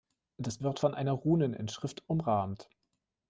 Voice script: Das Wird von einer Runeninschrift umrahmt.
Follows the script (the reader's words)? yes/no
yes